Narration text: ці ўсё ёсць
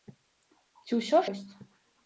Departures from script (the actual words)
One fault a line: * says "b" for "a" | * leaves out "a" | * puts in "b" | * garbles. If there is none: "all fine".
all fine